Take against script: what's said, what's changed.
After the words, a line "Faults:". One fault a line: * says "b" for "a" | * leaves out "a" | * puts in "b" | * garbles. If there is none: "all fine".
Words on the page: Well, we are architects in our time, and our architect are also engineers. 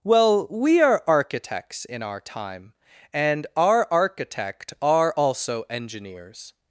Well, we are architects in our time, and our architect are also engineers.
Faults:
all fine